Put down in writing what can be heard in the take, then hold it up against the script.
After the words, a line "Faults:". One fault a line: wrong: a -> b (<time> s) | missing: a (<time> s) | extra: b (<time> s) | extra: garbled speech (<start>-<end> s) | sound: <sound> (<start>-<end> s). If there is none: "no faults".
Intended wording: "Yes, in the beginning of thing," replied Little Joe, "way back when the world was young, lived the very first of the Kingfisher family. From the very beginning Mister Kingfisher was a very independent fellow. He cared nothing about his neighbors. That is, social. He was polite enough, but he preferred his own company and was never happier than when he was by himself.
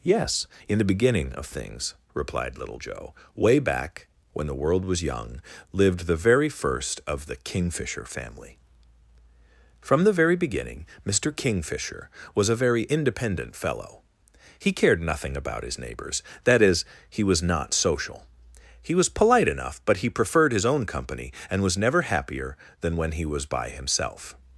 "Yes, in the beginning of things," replied Little Joe, "way back when the world was young, lived the very first of the Kingfisher family. From the very beginning Mister Kingfisher was a very independent fellow. He cared nothing about his neighbors. That is, he was not social. He was polite enough, but he preferred his own company and was never happier than when he was by himself.
Faults:
wrong: thing -> things (1.4 s)
extra: he was not (17.1 s)